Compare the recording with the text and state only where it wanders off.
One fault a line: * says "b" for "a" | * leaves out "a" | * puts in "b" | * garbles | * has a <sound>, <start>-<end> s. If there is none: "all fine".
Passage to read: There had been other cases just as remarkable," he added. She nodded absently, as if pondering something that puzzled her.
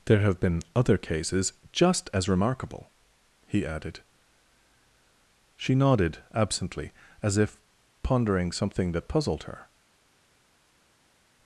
* says "have" for "had"